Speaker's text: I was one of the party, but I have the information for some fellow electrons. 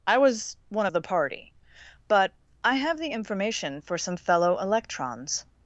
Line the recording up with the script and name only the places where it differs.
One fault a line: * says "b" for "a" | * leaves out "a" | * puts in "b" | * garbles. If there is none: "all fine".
all fine